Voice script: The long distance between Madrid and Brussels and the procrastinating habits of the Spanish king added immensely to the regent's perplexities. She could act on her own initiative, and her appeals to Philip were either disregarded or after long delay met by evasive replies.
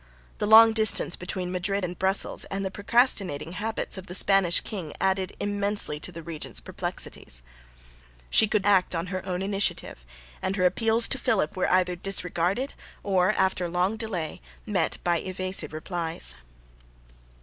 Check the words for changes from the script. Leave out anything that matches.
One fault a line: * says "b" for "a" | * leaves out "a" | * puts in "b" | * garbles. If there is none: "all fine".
all fine